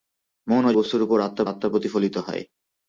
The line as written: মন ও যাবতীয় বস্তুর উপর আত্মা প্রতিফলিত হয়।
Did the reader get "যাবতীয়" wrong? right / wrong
wrong